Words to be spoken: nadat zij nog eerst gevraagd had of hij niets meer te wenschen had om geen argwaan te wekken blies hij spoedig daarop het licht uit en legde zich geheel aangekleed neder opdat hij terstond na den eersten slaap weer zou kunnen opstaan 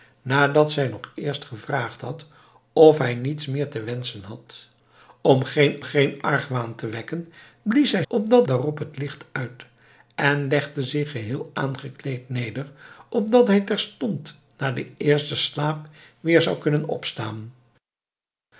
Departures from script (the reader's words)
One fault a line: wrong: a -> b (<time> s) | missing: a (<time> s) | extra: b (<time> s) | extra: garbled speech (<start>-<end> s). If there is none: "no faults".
extra: geen (5.8 s)
wrong: spoedig -> opdat (8.1 s)